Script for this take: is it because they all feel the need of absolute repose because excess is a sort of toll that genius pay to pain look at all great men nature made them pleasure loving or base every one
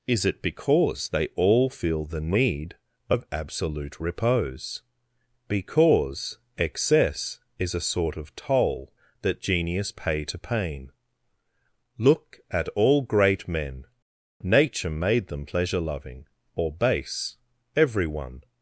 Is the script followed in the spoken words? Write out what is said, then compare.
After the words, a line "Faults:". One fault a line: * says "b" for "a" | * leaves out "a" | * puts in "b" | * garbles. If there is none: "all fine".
is it because they all feel the need of absolute repose because excess is a sort of toll that genius pay to pain look at all great men nature made them pleasure loving or base every one
Faults:
all fine